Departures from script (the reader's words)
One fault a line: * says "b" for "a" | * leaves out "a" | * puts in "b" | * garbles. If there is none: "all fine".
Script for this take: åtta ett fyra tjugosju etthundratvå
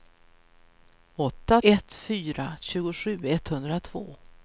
all fine